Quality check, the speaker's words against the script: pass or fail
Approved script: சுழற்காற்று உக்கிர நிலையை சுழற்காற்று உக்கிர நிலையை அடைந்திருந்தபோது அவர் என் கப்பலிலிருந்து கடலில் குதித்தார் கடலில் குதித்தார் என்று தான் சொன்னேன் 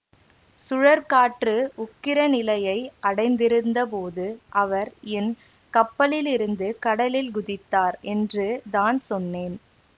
fail